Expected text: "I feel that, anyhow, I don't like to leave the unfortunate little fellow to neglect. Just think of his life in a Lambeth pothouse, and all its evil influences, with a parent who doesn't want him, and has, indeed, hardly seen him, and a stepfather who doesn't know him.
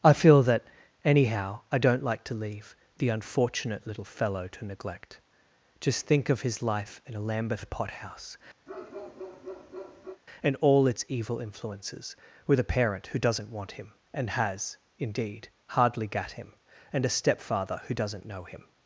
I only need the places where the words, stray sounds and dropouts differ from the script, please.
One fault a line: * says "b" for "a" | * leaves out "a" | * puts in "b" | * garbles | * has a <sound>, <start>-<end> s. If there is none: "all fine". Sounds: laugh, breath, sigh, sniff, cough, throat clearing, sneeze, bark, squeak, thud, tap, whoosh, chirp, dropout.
* has a bark, 8.7-10.2 s
* says "gat" for "seen"